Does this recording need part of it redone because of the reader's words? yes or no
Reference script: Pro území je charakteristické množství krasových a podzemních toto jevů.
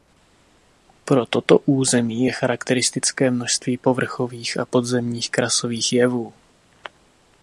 yes